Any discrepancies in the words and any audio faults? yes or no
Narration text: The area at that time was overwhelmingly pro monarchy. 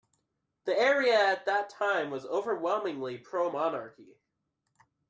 no